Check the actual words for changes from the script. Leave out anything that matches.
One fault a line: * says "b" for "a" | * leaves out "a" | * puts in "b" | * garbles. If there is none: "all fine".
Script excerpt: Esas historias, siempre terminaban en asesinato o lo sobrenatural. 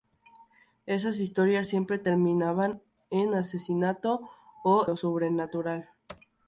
all fine